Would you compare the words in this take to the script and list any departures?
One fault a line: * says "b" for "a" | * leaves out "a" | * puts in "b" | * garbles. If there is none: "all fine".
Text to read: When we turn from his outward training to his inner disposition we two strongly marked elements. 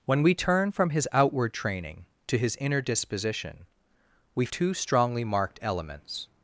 all fine